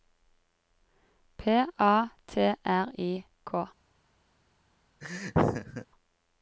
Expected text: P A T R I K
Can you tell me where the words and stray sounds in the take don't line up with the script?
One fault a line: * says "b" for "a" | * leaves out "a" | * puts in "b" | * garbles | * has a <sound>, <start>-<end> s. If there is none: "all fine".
* has a laugh, 5.0-5.9 s